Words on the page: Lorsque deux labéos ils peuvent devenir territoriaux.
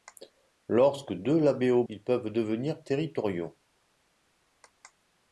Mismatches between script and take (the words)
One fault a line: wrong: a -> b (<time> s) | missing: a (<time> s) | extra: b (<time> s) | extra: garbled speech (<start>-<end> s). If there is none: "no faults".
no faults